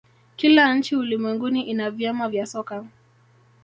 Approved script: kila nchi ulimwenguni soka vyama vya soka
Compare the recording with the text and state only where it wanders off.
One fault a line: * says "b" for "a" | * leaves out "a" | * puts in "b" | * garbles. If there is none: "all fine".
* says "ina" for "soka"